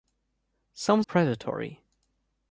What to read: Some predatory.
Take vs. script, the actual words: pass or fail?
pass